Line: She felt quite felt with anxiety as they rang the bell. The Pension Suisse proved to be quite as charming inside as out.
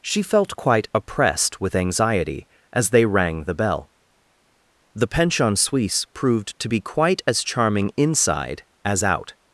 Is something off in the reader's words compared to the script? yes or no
yes